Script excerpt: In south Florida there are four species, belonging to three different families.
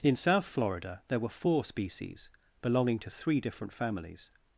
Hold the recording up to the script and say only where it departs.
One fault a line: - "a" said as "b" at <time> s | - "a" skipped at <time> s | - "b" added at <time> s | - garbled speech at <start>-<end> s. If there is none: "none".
- "are" said as "were" at 1.2 s